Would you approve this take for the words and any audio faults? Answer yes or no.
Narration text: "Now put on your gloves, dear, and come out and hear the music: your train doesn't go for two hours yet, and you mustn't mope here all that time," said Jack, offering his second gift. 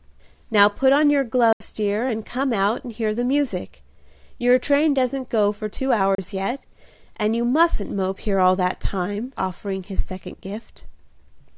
no